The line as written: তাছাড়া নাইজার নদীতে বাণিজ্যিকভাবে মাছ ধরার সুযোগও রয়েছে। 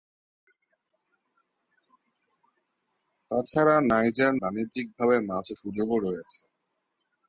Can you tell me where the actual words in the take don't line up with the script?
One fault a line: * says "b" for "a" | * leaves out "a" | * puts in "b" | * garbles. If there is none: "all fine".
* leaves out "নদীতে"
* leaves out "ধরার"